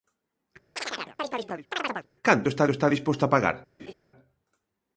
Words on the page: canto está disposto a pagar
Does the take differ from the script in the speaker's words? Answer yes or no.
yes